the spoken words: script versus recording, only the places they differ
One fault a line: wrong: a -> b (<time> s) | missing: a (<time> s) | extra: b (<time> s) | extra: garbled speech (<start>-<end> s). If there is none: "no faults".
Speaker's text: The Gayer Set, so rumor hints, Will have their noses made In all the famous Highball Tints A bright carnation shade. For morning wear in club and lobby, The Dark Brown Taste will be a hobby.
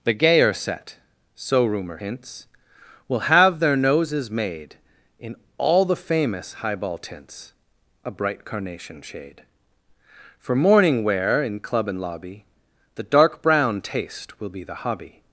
wrong: a -> the (14.6 s)